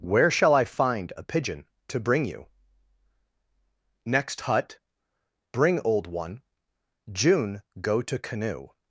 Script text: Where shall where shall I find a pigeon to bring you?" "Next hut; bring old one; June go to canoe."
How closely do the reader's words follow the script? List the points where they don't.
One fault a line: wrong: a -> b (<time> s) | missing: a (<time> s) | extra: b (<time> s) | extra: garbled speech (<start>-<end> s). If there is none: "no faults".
missing: where shall (0.6 s)